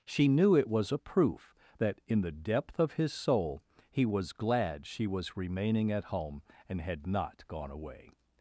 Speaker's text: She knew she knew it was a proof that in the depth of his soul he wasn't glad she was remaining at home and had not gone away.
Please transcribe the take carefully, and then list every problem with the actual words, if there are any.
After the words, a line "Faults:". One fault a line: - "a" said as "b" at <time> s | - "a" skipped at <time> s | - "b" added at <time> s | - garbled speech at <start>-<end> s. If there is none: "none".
She knew it was a proof that in the depth of his soul he was glad she was remaining at home and had not gone away.
Faults:
- "she knew" skipped at 0.6 s
- "wasn't" said as "was" at 4.0 s